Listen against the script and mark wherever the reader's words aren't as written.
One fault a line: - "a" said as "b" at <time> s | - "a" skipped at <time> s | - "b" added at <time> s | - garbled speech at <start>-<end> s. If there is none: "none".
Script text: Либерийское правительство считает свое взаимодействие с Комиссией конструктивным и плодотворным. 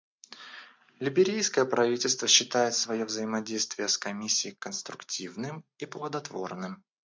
none